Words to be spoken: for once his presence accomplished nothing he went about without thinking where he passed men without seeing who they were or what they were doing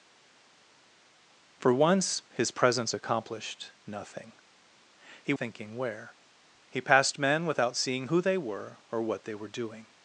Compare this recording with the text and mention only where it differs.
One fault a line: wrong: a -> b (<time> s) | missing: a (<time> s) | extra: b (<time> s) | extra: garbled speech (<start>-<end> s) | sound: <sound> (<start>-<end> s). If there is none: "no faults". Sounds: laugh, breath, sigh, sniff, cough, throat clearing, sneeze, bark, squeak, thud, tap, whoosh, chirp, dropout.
missing: went about without (5.3 s)